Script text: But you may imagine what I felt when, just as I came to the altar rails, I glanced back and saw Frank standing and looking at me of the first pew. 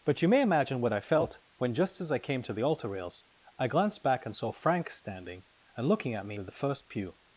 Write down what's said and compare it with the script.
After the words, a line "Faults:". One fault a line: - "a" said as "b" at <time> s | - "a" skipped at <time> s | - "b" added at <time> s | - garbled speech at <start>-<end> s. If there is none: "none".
But you may imagine what I felt when, just as I came to the altar rails, I glanced back and saw Frank standing and looking at me of the first pew.
Faults:
none